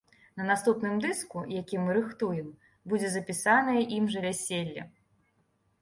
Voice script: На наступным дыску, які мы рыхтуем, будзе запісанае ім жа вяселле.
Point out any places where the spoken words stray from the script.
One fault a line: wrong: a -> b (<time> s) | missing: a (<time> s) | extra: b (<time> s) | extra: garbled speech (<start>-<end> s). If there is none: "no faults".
no faults